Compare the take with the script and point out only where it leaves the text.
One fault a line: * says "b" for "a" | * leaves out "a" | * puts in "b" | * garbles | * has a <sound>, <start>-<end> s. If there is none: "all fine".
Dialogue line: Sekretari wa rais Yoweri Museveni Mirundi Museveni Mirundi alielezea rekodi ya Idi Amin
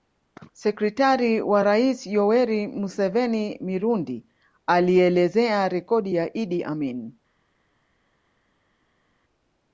* leaves out "Museveni Mirundi"